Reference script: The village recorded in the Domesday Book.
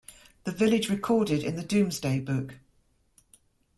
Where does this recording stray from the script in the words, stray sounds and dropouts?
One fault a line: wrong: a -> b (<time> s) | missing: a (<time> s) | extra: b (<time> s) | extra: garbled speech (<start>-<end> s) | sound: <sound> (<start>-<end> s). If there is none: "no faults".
no faults